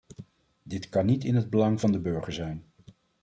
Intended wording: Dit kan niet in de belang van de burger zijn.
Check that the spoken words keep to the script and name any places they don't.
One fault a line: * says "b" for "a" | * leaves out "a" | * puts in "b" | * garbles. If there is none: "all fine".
* says "het" for "de"